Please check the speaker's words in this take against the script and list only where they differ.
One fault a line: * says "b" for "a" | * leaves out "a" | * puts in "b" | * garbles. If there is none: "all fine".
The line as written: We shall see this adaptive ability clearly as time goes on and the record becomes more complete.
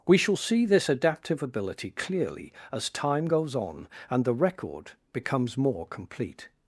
all fine